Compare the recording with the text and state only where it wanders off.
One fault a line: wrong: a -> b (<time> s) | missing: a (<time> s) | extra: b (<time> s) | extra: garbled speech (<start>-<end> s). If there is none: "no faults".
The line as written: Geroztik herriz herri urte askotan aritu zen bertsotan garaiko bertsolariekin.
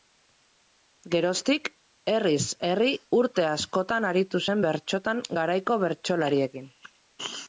no faults